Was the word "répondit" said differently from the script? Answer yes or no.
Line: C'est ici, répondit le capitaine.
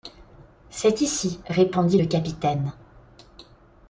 no